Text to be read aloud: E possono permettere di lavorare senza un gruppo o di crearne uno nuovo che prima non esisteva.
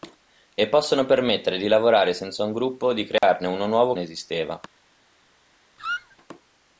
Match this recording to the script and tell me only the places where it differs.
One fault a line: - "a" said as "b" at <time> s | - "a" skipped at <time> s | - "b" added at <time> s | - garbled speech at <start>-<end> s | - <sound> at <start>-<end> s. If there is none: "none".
- dropout at 3.2-3.2 s
- "che prima non" skipped at 3.9 s
- squeak at 5.8-6.2 s